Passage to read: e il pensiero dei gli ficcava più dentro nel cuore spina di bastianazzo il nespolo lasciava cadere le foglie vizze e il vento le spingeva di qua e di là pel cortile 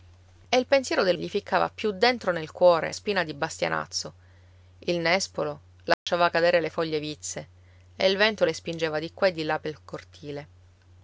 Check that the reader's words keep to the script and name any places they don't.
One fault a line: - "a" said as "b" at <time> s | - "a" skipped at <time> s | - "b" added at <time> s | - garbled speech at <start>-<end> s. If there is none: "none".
none